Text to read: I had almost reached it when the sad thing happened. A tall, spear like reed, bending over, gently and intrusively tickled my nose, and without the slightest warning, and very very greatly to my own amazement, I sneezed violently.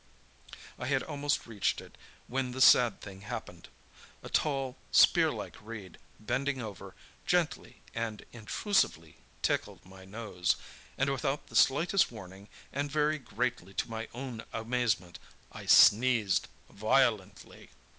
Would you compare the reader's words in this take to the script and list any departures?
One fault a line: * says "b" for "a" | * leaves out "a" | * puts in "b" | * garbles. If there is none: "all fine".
* leaves out "very"